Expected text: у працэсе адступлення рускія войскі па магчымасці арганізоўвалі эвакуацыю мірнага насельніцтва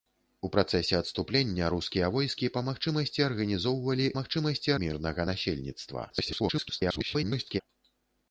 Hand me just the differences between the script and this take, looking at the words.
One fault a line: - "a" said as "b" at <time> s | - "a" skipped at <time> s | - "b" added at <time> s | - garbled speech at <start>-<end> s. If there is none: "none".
- "эвакуацыю" said as "магчымасці" at 4.2 s
- garbled speech at 6.1-7.6 s